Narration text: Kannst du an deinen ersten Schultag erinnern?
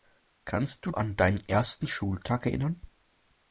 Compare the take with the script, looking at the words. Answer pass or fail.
pass